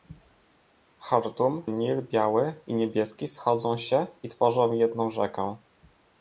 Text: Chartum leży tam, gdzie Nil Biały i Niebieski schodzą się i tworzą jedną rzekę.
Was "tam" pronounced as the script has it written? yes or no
no